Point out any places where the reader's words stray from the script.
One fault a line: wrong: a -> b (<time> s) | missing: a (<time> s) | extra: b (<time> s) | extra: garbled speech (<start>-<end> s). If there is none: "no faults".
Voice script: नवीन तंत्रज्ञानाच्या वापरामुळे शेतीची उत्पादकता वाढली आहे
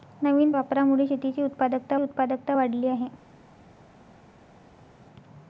missing: तंत्रज्ञानाच्या (0.5 s)
extra: उत्पादकता (2.0 s)